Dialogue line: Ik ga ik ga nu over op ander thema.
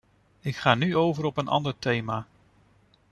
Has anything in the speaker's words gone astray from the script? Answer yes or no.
yes